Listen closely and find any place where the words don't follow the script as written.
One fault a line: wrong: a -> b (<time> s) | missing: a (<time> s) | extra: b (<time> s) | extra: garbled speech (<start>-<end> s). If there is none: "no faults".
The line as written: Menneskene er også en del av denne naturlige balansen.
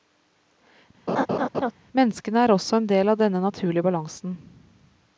no faults